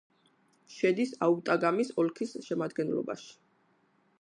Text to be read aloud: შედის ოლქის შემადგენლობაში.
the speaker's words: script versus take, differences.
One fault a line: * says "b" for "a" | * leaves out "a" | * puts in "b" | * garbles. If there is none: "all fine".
* puts in "აუტაგამის"